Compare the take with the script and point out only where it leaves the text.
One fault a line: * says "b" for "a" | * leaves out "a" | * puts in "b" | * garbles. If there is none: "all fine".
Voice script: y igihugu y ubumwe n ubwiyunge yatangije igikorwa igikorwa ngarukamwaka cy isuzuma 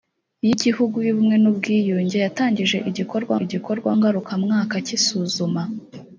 all fine